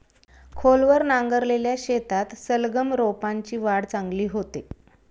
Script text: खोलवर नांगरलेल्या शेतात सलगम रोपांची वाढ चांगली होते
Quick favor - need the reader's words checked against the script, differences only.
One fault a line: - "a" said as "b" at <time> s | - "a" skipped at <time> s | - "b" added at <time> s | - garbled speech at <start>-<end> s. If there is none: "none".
none